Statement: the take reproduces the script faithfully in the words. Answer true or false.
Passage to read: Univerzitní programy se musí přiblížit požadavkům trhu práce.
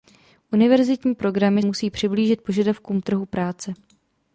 false